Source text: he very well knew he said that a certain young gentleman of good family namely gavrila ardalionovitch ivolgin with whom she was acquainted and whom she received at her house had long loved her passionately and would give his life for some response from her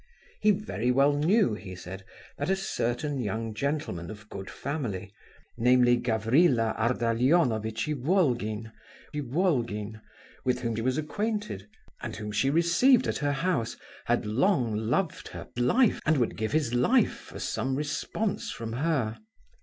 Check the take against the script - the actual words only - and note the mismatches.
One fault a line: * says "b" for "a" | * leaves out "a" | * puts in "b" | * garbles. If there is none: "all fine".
* puts in "ivolgin"
* leaves out "she"
* says "life" for "passionately"